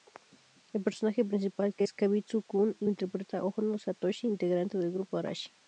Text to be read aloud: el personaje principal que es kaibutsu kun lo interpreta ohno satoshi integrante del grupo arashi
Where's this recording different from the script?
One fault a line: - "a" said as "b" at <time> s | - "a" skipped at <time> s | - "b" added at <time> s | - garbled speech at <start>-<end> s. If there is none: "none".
none